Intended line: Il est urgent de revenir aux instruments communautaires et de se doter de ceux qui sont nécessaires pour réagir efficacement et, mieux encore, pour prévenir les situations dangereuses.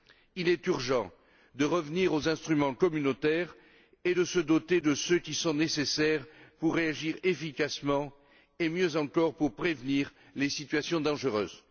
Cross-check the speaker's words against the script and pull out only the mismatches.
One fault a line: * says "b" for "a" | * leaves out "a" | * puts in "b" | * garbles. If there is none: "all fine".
all fine